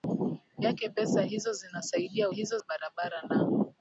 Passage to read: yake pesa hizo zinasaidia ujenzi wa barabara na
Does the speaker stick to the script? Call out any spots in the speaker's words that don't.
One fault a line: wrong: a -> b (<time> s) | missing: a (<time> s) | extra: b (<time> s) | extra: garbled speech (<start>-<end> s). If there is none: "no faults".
wrong: ujenzi -> hizo (2.3 s)